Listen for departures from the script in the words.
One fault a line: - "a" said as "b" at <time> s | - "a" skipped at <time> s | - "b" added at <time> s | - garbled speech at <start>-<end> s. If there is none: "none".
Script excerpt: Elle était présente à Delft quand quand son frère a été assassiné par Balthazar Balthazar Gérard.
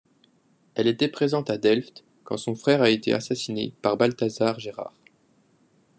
- "quand" skipped at 2.4 s
- "Balthazar" skipped at 4.6 s